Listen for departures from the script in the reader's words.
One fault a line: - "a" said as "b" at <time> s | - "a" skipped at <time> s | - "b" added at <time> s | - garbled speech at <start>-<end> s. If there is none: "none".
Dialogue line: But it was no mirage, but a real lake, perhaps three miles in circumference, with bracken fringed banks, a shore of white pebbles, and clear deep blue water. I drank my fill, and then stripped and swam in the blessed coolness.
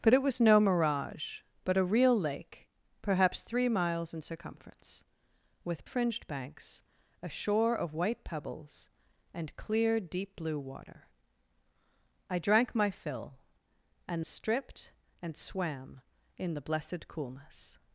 - "bracken" skipped at 5.8 s
- "then" skipped at 14.2 s